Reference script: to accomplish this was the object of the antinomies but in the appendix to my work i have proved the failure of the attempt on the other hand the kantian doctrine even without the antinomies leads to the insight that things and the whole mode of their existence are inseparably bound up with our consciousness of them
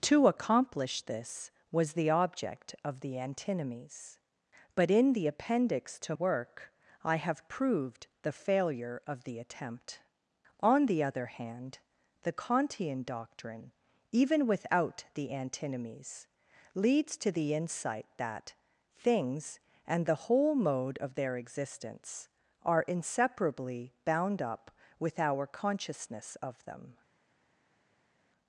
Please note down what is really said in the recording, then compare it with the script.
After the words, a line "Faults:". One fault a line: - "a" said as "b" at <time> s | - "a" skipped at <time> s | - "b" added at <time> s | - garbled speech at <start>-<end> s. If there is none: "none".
to accomplish this was the object of the antinomies but in the appendix to work i have proved the failure of the attempt on the other hand the kantian doctrine even without the antinomies leads to the insight that things and the whole mode of their existence are inseparably bound up with our consciousness of them
Faults:
- "my" skipped at 6.2 s